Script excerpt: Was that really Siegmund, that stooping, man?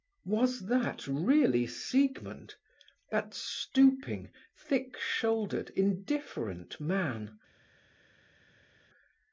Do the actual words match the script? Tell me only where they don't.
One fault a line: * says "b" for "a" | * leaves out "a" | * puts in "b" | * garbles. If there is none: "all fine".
* puts in "thick shouldered indifferent"